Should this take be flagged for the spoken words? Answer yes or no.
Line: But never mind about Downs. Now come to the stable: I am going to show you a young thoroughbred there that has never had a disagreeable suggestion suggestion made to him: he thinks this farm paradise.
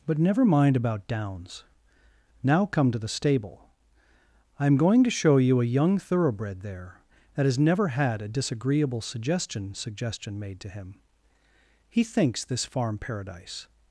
no